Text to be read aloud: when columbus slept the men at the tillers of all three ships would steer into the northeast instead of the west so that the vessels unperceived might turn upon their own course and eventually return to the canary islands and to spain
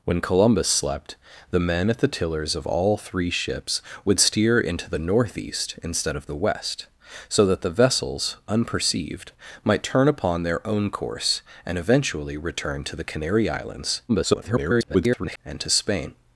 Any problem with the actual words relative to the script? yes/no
yes